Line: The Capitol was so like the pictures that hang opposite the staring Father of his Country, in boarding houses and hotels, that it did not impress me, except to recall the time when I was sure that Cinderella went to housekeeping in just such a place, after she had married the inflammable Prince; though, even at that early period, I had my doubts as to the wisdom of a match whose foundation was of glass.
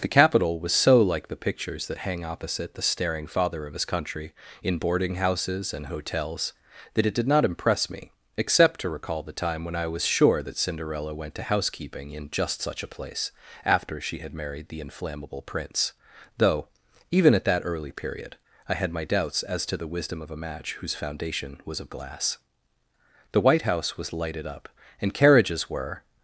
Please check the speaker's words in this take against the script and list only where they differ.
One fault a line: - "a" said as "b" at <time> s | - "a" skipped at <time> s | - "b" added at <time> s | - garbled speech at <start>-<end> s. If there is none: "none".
- "The White House was lighted up and carriages were" added at 23.3 s